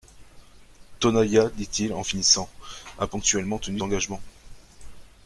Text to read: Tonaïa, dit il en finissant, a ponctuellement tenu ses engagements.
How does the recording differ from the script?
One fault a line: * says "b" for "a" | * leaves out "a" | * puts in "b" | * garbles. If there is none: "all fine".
* leaves out "ses"